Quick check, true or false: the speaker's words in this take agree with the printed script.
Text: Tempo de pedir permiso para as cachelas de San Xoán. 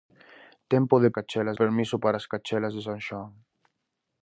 false